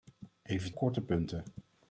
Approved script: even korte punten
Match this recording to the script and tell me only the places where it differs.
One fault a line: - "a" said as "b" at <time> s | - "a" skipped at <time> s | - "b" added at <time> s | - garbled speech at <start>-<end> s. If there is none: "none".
none